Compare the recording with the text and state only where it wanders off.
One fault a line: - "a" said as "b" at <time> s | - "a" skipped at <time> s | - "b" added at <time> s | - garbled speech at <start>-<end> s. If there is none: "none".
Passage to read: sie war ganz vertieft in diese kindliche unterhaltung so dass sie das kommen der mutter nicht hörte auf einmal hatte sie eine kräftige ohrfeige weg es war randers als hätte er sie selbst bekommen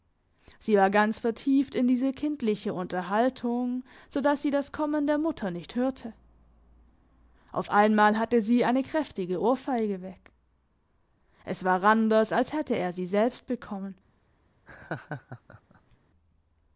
none